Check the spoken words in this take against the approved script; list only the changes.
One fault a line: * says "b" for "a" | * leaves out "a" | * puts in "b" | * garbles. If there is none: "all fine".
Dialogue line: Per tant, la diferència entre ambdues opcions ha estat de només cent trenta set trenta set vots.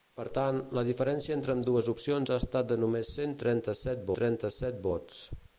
all fine